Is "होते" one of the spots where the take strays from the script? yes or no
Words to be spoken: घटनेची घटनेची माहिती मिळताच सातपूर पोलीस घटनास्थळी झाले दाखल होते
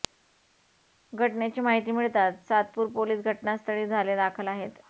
yes